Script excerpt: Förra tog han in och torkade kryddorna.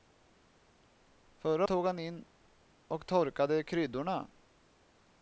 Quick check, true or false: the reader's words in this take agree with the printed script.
true